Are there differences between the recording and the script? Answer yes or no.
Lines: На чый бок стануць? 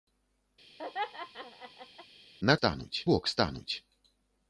yes